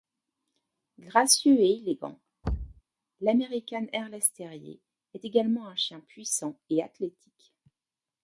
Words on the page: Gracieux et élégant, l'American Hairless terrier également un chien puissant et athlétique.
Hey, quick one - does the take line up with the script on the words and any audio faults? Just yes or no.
no